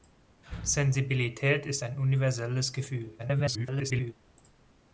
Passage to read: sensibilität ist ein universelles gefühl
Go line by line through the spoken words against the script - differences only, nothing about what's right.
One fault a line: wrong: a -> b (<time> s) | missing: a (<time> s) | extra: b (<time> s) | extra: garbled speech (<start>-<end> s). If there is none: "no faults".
extra: garbled speech (3.2-4.1 s)